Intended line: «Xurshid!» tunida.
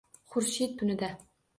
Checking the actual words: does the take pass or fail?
pass